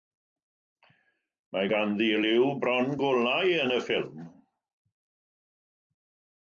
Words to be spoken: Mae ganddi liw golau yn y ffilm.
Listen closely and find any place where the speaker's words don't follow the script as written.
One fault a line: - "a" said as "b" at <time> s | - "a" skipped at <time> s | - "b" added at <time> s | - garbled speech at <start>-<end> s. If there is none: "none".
- "bron" added at 2.6 s